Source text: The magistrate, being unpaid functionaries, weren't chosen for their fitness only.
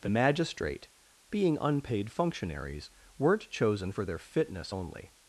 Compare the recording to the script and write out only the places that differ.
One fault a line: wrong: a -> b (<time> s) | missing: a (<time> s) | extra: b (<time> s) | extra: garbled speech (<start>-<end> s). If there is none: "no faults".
no faults